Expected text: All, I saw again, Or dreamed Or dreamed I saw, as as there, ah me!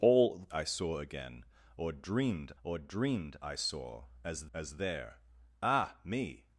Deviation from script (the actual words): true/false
false